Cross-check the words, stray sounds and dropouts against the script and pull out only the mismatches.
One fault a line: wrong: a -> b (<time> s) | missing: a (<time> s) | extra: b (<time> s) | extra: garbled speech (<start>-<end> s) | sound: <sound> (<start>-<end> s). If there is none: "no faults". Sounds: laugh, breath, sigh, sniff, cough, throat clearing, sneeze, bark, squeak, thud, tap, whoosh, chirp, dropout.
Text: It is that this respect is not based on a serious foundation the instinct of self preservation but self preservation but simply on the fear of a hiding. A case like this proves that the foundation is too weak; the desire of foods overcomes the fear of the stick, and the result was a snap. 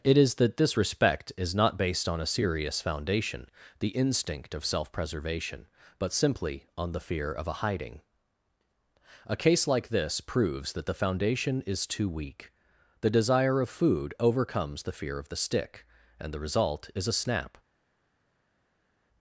missing: self preservation but (6.1 s)
wrong: foods -> food (13.7 s)
wrong: was -> is (16.9 s)